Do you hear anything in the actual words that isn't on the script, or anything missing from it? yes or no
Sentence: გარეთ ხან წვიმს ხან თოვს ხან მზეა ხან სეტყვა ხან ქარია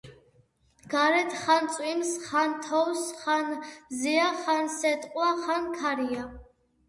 no